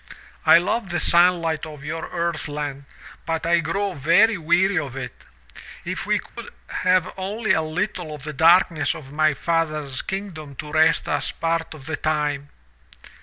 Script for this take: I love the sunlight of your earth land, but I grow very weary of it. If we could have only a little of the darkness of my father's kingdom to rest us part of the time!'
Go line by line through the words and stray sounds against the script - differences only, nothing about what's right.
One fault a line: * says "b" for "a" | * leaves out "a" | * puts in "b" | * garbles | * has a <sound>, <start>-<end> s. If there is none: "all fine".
* has a dropout, 6.3-6.4 s